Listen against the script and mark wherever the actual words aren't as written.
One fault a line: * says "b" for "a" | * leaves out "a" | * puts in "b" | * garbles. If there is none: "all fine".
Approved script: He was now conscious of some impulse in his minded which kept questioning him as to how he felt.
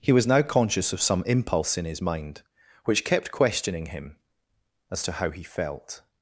* says "mind" for "minded"